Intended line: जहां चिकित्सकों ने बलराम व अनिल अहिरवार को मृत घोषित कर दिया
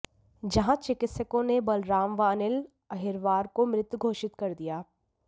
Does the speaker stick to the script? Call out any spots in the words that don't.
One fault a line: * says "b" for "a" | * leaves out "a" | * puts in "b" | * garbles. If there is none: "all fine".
all fine